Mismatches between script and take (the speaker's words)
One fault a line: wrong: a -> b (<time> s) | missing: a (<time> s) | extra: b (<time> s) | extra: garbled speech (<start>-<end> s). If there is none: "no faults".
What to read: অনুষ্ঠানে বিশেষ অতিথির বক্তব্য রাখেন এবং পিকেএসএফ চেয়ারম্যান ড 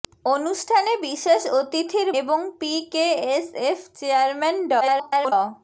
missing: বক্তব্য রাখেন (2.1 s)
extra: garbled speech (4.8-5.3 s)